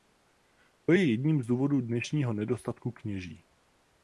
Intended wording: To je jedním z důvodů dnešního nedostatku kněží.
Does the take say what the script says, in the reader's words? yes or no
yes